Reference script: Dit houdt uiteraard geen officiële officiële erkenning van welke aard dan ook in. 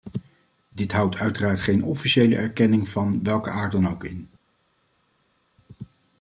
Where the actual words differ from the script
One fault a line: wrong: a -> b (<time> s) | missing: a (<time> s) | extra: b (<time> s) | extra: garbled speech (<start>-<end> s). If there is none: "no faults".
missing: officiële (2.4 s)